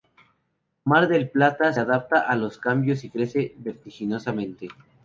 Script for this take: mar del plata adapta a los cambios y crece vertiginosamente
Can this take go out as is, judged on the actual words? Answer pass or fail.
pass